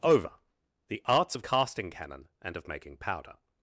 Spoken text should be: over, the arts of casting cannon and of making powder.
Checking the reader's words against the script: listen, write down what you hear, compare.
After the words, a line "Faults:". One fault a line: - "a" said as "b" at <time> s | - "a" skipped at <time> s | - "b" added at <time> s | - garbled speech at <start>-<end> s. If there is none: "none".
over, the arts of casting cannon and of making powder.
Faults:
none